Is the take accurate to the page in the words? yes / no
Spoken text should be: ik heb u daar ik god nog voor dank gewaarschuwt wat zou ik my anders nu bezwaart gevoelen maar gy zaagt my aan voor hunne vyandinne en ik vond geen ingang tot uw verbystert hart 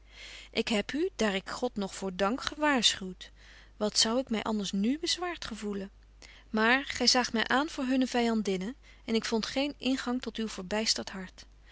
yes